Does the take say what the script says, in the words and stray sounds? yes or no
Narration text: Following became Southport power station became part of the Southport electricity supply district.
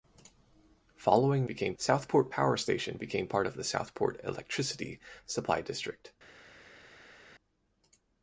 yes